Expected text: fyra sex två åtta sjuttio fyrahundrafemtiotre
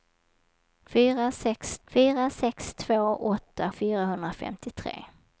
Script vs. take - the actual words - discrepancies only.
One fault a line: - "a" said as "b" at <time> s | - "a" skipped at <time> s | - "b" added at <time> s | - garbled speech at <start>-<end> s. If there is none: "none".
- "fyra sex" added at 1.9 s
- "sjuttio" skipped at 3.7 s